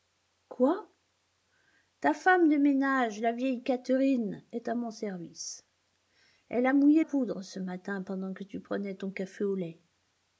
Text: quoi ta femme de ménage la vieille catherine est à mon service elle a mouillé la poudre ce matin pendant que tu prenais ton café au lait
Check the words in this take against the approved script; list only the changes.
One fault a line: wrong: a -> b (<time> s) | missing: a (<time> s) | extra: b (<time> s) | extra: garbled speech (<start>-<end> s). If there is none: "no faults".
missing: la (7.0 s)